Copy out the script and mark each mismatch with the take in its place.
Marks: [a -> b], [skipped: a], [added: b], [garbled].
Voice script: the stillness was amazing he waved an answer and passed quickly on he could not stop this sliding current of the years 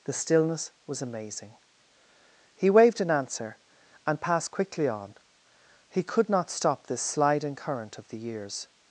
the stillness was amazing he waved an answer and passed quickly on he could not stop this sliding current of the years